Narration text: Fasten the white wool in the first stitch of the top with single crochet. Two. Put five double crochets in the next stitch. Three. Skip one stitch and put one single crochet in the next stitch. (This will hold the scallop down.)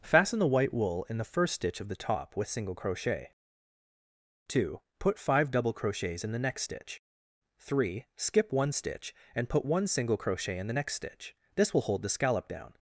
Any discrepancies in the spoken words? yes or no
no